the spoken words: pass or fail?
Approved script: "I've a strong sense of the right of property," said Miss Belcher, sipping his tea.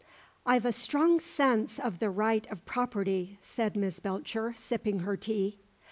fail